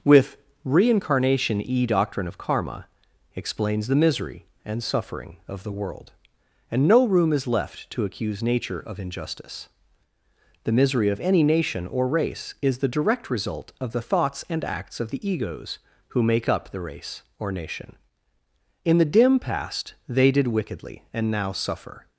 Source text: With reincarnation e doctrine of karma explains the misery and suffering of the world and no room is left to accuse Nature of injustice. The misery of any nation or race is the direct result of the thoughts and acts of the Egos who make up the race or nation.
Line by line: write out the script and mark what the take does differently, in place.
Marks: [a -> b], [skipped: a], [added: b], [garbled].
With reincarnation e doctrine of karma explains the misery and suffering of the world and no room is left to accuse Nature of injustice. The misery of any nation or race is the direct result of the thoughts and acts of the Egos who make up the race or nation. [added: In the dim past they did wickedly and now suffer]